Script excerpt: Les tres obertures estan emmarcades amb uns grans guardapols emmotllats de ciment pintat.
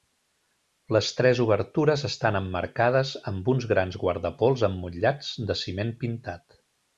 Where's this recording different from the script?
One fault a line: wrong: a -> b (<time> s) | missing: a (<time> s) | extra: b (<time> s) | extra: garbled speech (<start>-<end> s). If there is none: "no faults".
no faults